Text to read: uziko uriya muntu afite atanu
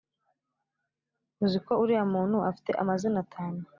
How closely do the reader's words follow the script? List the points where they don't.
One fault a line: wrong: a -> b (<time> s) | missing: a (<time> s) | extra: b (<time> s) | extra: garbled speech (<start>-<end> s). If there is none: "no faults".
extra: amazina (2.8 s)